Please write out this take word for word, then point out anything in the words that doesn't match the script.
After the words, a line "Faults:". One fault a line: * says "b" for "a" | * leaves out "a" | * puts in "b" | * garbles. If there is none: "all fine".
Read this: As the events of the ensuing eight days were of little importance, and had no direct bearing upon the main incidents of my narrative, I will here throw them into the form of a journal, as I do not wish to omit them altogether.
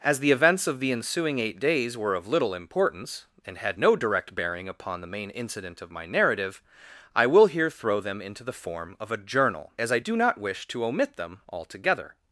As the events of the ensuing eight days were of little importance, and had no direct bearing upon the main incident of my narrative, I will here throw them into the form of a journal, as I do not wish to omit them altogether.
Faults:
* says "incident" for "incidents"